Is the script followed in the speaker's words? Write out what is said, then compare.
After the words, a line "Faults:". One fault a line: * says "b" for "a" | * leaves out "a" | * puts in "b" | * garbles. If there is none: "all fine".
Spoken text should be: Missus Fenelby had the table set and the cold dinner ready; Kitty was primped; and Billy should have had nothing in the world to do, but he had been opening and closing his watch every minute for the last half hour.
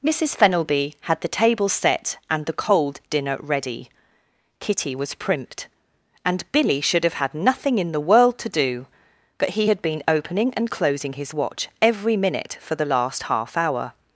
Missus Fenelby had the table set and the cold dinner ready; Kitty was primped; and Billy should have had nothing in the world to do, but he had been opening and closing his watch every minute for the last half hour.
Faults:
all fine